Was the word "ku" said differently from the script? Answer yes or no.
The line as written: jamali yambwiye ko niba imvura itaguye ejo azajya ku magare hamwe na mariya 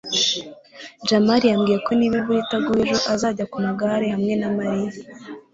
no